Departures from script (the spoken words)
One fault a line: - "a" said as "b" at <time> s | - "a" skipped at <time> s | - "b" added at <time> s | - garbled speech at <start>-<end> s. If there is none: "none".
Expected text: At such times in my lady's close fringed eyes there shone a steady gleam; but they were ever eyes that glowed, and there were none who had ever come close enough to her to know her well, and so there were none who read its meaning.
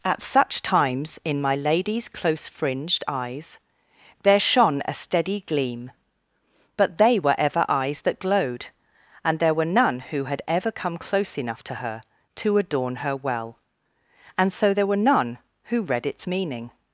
- "know" said as "adorn" at 12.6 s